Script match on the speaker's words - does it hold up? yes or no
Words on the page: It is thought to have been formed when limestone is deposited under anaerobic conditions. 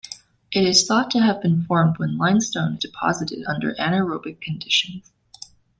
no